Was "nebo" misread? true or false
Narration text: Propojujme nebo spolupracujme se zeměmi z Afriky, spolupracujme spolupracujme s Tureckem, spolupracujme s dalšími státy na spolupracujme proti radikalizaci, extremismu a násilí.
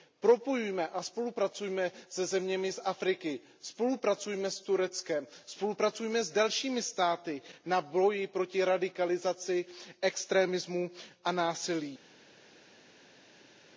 true